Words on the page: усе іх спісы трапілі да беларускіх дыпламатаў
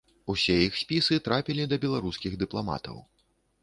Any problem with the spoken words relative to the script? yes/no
no